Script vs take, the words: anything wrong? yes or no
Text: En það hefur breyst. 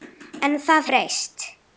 yes